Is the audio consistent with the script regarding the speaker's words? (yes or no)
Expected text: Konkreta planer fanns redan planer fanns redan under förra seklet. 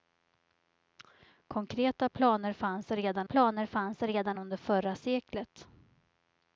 yes